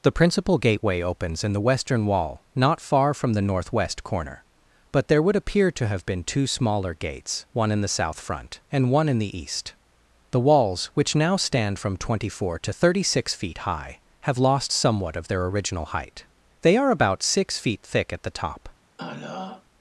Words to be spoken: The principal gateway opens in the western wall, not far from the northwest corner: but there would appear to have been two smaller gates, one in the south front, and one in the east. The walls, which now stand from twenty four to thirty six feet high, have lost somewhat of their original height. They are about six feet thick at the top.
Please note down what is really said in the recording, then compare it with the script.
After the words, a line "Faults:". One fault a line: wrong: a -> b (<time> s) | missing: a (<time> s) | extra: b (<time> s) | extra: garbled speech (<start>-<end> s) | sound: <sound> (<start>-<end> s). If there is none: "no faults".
The principal gateway opens in the western wall, not far from the northwest corner: but there would appear to have been two smaller gates, one in the south front, and one in the east. The walls, which now stand from twenty four to thirty six feet high, have lost somewhat of their original height. They are about six feet thick at the top.
Faults:
sound: throat clearing (19.0-19.7 s)